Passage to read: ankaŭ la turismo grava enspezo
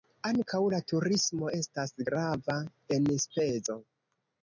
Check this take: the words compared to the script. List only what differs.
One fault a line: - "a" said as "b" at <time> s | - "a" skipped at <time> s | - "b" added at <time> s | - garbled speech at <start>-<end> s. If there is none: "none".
- "estas" added at 1.6 s